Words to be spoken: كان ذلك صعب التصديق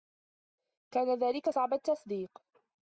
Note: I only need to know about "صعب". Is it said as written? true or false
true